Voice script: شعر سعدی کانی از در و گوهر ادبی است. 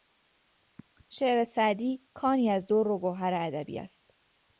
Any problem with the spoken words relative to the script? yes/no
no